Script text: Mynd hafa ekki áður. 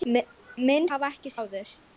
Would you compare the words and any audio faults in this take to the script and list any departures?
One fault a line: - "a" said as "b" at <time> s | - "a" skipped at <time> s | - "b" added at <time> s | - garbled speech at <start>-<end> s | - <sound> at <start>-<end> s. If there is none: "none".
none